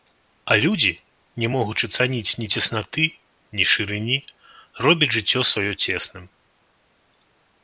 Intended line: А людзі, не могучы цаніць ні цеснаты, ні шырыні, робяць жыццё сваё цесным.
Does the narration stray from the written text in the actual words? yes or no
no